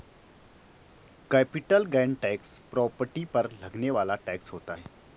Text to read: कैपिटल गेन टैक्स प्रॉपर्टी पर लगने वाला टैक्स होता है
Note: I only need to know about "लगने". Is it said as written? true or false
true